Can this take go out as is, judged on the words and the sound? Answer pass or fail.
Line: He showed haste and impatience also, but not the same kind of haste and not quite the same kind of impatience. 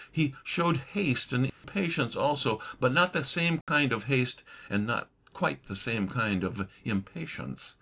fail